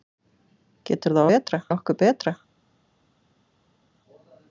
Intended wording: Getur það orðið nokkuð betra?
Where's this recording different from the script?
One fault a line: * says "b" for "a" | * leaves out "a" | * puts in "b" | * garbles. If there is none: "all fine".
* says "betra" for "orðið"